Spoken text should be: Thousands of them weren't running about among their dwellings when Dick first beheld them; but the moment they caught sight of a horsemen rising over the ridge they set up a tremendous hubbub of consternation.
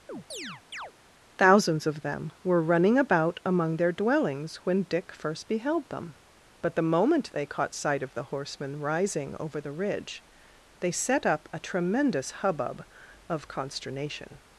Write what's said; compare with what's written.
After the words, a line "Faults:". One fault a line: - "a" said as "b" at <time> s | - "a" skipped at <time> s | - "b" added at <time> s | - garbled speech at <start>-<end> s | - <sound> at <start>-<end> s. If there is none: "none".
Thousands of them were running about among their dwellings when Dick first beheld them; but the moment they caught sight of the horsemen rising over the ridge they set up a tremendous hubbub of consternation.
Faults:
- chirp at 0.1-0.9 s
- "weren't" said as "were" at 2.4 s
- "a" said as "the" at 8.1 s